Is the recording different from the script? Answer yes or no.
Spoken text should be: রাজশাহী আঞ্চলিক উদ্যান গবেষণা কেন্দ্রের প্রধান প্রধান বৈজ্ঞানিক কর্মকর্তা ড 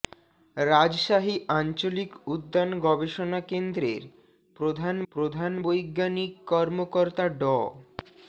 no